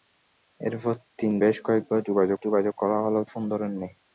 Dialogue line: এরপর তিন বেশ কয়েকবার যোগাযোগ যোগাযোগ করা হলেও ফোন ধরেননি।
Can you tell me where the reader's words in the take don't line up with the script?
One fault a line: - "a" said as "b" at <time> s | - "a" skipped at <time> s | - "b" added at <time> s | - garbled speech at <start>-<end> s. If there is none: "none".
none